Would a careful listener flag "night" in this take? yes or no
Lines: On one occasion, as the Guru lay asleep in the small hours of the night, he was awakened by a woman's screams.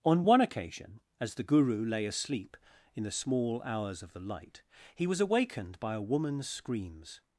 yes